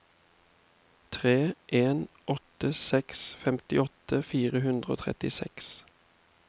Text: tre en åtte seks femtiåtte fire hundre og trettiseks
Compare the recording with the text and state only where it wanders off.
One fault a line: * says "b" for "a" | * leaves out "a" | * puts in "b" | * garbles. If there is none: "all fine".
all fine